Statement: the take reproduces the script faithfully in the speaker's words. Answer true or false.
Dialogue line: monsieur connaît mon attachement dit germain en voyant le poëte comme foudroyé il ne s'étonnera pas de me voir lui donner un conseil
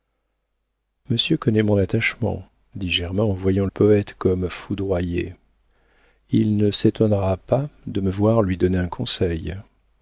false